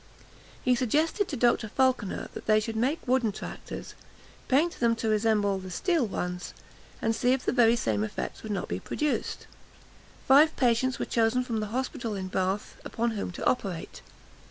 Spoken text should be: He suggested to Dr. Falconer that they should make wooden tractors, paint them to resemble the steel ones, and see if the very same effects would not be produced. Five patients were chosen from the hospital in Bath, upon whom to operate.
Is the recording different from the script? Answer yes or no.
no